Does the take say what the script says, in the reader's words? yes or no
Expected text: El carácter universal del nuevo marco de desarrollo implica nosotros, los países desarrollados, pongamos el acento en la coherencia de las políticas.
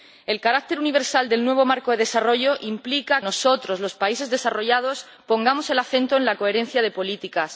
yes